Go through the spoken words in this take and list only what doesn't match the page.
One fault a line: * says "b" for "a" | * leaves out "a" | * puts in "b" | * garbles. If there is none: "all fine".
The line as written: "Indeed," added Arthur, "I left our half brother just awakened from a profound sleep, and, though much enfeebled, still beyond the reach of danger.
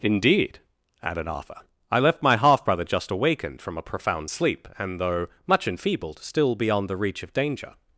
* says "my" for "our"